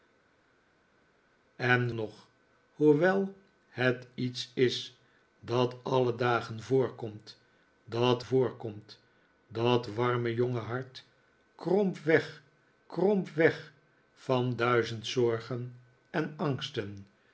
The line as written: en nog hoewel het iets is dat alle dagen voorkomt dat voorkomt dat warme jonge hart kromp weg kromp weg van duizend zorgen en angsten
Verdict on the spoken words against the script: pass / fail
pass